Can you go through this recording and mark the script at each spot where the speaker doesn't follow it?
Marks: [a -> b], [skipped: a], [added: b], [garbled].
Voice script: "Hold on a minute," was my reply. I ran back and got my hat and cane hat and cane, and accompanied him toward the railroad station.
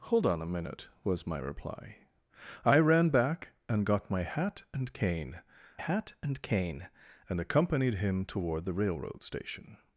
"Hold on a minute," was my reply. I ran back and got my hat and cane hat and cane, and accompanied him toward the railroad station.